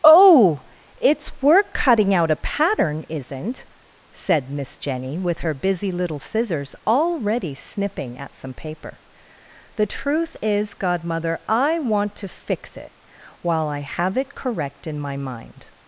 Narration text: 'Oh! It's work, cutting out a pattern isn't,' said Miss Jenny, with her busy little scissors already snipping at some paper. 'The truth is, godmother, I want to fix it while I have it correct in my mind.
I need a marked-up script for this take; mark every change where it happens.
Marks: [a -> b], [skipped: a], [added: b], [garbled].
'Oh! It's work, cutting out a pattern isn't,' said Miss Jenny, with her busy little scissors already snipping at some paper. 'The truth is, godmother, I want to fix it while I have it correct in my mind.